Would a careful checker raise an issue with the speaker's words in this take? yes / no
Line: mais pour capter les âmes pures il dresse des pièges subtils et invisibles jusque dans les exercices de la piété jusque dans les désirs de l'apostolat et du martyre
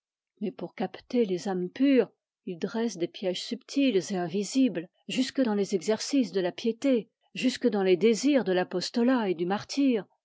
no